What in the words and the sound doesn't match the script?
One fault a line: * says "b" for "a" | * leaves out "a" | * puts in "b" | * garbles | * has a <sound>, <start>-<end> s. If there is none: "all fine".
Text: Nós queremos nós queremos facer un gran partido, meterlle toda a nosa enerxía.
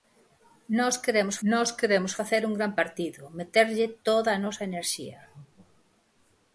all fine